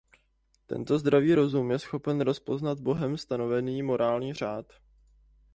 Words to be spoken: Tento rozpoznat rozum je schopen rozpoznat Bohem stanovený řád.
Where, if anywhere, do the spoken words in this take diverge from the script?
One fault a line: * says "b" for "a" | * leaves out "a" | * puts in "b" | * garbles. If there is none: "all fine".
* says "zdravý" for "rozpoznat"
* puts in "morální"